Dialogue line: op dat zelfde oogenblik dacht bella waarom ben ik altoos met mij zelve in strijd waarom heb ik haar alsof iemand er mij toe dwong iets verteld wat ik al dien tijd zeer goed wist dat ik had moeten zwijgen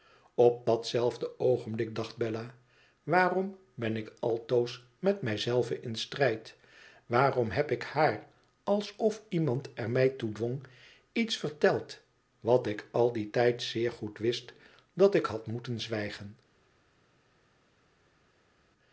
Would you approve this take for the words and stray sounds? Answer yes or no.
yes